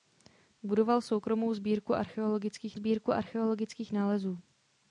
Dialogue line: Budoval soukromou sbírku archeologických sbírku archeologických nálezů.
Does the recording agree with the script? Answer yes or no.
yes